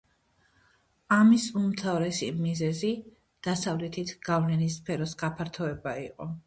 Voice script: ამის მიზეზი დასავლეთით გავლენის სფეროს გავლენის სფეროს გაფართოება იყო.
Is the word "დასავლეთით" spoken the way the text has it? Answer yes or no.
yes